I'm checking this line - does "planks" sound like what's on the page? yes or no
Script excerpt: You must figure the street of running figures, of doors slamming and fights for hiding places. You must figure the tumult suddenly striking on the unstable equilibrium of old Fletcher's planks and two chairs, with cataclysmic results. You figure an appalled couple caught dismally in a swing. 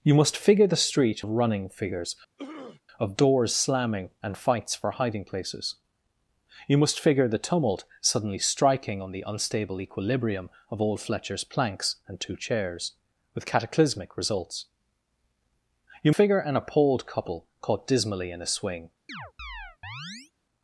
yes